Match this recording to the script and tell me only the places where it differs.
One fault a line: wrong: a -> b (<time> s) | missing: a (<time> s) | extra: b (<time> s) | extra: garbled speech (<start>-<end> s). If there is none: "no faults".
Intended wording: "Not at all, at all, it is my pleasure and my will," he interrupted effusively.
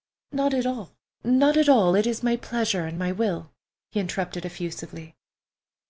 extra: not (1.2 s)